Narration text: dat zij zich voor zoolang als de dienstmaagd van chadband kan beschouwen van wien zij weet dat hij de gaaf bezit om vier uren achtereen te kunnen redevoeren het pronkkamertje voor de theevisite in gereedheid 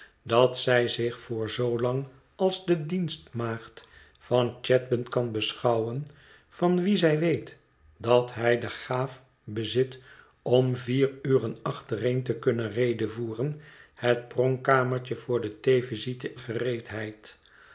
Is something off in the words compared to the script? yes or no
yes